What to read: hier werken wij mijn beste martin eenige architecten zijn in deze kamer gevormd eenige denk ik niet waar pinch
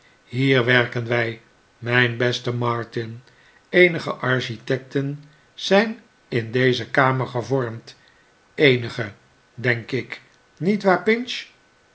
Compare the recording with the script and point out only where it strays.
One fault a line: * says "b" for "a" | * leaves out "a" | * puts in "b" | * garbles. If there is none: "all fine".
all fine